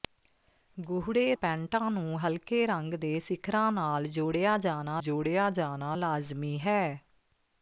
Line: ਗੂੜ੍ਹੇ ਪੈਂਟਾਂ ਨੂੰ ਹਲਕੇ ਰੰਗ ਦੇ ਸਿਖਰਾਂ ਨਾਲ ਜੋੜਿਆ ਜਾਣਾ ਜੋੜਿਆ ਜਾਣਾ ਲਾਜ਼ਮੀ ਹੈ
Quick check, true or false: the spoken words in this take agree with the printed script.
true